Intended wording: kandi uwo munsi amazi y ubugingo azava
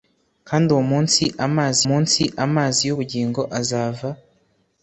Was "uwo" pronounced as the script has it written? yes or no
yes